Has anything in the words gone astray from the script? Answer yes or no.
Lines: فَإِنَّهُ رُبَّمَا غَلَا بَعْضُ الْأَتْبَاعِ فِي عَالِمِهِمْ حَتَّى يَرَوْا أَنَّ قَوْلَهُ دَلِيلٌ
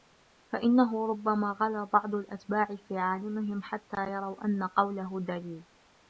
no